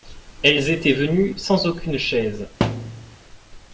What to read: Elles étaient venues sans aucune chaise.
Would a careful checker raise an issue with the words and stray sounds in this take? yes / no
yes